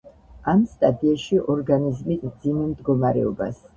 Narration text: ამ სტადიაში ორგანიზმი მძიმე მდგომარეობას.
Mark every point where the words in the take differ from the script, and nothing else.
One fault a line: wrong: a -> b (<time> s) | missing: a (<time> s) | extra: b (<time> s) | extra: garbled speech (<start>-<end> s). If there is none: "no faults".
no faults